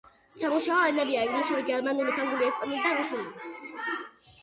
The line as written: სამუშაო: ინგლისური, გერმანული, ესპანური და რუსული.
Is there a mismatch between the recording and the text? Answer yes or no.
yes